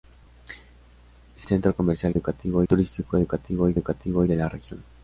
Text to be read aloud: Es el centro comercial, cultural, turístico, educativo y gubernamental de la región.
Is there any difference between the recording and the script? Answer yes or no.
yes